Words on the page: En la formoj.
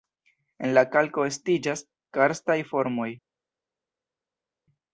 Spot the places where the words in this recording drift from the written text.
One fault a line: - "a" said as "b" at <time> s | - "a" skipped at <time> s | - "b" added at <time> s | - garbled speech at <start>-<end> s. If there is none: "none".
- "kalko estiĝas karstaj" added at 0.9 s